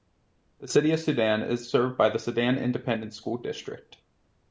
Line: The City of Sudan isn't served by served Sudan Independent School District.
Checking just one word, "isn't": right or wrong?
wrong